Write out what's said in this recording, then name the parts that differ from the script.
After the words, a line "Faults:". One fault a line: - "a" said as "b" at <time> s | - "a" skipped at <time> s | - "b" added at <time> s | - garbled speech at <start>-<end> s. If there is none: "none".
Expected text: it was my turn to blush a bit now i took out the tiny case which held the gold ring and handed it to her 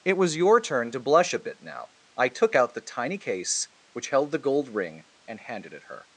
it was your turn to blush a bit now i took out the tiny case which held the gold ring and handed it her
Faults:
- "my" said as "your" at 0.3 s
- "to" skipped at 5.9 s